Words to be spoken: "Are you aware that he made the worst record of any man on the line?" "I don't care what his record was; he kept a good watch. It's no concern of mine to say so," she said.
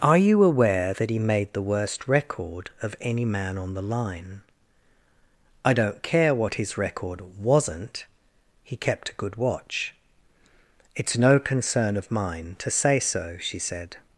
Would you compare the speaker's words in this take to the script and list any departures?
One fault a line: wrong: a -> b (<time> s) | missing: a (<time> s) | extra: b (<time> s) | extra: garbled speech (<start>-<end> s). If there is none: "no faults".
wrong: was -> wasn't (7.4 s)